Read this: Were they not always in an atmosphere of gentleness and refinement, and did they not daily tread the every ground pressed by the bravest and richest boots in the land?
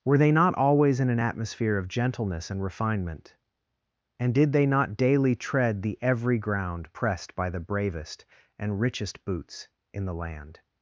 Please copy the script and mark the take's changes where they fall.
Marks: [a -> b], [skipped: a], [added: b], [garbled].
Were they not always in an atmosphere of gentleness and refinement, and did they not daily tread the every ground pressed by the bravest and richest boots in the land?